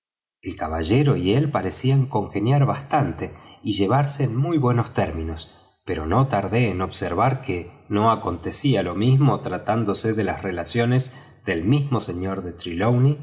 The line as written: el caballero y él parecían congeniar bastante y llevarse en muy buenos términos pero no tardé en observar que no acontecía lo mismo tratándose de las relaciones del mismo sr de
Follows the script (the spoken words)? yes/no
yes